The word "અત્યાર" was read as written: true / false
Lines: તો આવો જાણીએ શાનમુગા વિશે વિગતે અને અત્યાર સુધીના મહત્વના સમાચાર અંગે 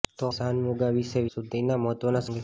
false